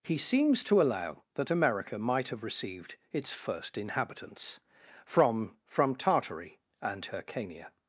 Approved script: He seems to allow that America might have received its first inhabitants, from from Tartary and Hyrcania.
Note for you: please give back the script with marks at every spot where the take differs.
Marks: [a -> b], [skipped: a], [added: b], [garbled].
He seems to allow that America might have received its first inhabitants, from from Tartary and Hyrcania.